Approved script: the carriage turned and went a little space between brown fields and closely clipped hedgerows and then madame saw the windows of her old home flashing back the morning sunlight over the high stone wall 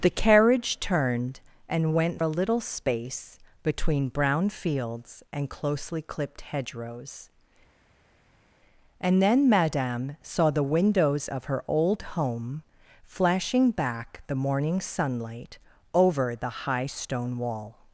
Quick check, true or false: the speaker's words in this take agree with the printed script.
true